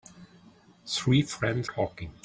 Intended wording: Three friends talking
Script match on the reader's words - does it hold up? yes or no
yes